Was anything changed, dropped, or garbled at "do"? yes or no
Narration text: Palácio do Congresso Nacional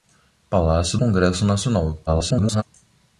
yes